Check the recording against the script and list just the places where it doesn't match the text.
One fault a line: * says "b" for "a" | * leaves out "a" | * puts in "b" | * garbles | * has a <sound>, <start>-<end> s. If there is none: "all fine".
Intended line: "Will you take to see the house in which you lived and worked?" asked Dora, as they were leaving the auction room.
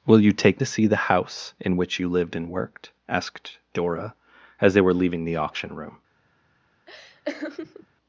* has a laugh, 6.9-7.9 s